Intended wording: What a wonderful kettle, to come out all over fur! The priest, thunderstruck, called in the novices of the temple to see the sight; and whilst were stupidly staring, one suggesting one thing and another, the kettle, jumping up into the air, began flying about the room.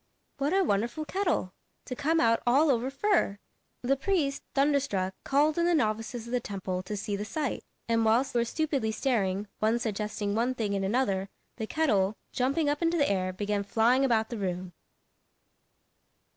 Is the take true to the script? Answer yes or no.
yes